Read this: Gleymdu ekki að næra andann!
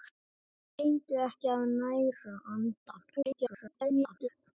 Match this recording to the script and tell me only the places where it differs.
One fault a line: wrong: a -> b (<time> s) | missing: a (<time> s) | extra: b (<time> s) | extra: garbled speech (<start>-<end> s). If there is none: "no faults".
extra: garbled speech (3.2-4.3 s)